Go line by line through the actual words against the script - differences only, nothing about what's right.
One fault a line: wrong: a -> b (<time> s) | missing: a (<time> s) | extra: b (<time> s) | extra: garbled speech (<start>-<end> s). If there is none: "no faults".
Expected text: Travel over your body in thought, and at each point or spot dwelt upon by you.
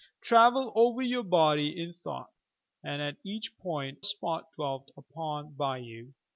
missing: or (4.0 s)